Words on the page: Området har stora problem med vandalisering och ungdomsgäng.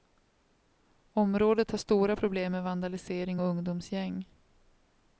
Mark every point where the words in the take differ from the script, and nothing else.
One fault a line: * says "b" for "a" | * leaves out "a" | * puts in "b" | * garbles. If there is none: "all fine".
all fine